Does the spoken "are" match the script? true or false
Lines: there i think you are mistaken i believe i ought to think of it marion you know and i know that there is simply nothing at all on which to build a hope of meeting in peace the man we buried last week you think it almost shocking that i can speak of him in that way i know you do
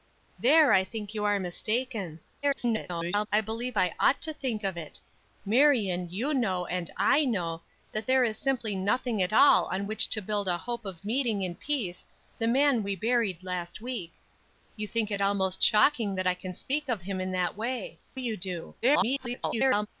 true